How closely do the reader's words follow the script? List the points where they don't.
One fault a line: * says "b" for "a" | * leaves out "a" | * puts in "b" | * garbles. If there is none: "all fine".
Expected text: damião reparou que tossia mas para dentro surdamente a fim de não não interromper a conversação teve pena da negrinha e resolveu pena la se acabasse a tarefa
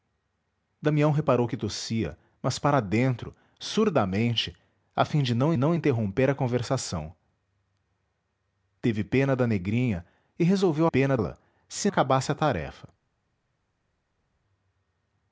all fine